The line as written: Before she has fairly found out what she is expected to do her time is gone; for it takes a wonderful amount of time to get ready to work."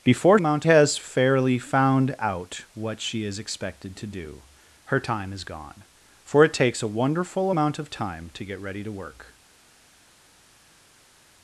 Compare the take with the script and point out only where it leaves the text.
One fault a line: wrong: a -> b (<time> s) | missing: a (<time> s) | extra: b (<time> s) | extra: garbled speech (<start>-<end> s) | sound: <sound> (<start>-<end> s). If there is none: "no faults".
wrong: she -> amount (0.4 s)